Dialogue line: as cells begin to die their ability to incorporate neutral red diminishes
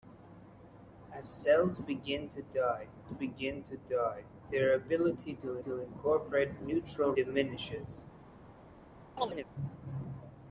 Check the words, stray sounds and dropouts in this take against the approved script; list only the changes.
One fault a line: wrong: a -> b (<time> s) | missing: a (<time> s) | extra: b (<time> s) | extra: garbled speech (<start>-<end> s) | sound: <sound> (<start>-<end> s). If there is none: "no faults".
extra: begin to die (3.1 s)
extra: to (5.6 s)
missing: red (7.1 s)
sound: chirp (9.2-9.5 s)